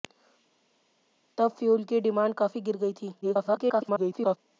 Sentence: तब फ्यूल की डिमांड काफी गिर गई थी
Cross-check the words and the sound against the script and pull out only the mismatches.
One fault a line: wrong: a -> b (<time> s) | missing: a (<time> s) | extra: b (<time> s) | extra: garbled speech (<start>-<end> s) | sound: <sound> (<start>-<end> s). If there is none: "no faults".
extra: garbled speech (3.2-4.4 s)